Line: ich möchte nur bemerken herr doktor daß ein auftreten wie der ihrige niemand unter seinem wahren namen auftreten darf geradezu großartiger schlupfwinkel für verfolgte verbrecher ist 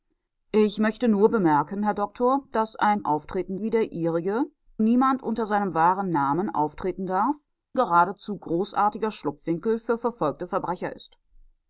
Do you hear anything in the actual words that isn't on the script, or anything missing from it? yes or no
no